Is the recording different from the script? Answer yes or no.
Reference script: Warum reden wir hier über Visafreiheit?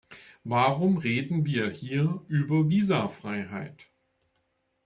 no